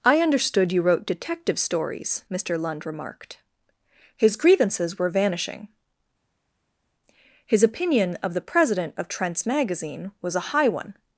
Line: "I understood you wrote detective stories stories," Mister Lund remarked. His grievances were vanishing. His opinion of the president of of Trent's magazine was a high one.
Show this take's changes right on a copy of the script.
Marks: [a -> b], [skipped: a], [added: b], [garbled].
"I understood you wrote detective stories [skipped: stories,"] Mister Lund remarked. His grievances were vanishing. His opinion of the president of [skipped: of] Trent's magazine was a high one.